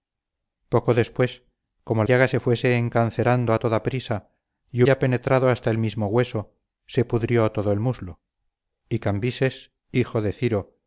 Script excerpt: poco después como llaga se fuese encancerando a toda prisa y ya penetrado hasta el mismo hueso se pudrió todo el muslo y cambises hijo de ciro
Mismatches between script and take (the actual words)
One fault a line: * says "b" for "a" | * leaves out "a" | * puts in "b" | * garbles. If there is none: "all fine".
all fine